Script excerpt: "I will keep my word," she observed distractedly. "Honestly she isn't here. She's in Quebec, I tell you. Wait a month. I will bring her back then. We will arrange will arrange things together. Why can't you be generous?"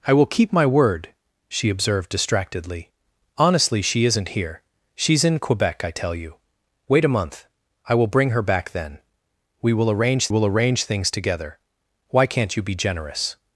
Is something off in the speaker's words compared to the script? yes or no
no